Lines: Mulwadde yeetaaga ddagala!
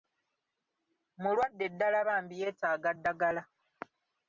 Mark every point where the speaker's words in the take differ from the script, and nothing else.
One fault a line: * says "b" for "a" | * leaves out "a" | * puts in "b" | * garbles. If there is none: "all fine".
* puts in "ddala bambi"